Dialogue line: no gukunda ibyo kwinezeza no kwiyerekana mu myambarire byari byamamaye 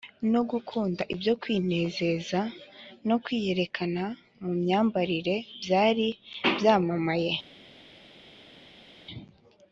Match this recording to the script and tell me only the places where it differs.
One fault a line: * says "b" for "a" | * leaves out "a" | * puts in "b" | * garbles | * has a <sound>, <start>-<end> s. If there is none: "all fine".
all fine